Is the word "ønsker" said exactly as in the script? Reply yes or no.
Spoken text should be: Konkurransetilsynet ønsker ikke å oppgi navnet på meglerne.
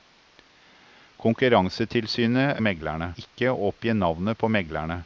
no